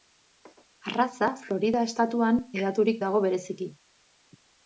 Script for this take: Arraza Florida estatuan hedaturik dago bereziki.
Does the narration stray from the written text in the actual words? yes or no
no